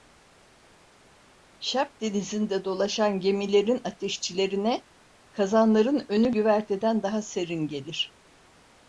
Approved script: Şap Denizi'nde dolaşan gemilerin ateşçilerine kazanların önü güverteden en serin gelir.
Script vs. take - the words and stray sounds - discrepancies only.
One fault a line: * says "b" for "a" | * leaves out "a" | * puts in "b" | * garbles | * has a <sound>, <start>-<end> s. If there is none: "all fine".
* says "daha" for "en"